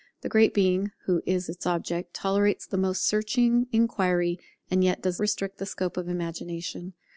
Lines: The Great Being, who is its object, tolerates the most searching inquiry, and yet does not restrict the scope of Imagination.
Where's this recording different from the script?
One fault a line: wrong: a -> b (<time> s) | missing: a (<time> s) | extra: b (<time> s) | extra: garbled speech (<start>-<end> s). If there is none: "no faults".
missing: not (5.2 s)